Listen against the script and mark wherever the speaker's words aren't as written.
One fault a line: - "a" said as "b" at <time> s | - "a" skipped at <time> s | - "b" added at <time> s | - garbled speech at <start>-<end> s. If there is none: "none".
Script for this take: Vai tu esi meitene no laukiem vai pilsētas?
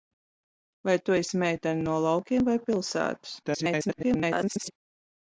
- garbled speech at 3.4-4.7 s